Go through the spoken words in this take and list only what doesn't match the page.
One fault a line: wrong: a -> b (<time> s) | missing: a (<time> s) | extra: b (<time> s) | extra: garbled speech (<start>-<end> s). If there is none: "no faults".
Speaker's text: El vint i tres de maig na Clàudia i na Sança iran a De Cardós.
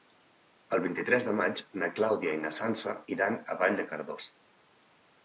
extra: Vall (3.6 s)